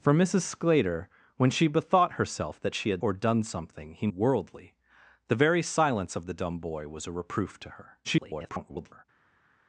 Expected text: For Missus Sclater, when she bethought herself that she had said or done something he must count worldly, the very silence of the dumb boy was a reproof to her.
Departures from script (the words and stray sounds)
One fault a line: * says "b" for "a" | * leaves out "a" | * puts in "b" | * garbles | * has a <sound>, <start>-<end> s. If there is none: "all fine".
* leaves out "said"
* leaves out "must count"
* garbles